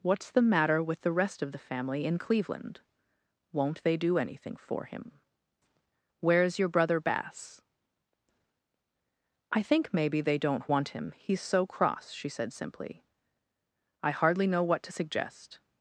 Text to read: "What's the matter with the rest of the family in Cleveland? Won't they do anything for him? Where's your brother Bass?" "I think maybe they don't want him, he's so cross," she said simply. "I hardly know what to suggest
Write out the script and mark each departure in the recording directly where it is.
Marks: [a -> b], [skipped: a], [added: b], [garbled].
"What's the matter with the rest of the family in Cleveland? Won't they do anything for him? Where's your brother Bass?" "I think maybe they don't want him, he's so cross," she said simply. "I hardly know what to suggest